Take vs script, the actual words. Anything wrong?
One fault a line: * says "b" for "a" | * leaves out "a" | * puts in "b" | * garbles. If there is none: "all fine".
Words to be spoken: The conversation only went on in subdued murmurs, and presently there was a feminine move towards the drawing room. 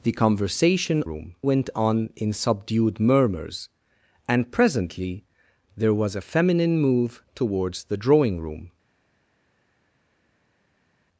* says "room" for "only"